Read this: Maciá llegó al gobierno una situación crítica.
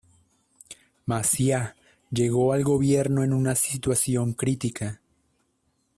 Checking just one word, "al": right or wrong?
right